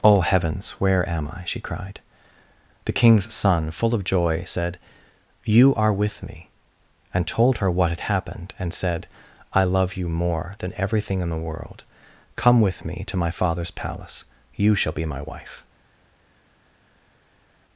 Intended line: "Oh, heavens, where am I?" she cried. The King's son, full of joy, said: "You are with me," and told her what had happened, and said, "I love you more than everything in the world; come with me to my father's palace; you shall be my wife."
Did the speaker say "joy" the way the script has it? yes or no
yes